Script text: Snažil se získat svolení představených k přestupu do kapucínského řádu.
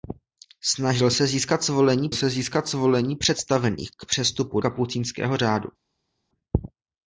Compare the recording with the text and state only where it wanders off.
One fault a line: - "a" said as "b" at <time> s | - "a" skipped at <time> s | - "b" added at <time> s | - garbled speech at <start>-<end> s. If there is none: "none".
- "se získat svolení" added at 2.1 s
- "do" skipped at 4.6 s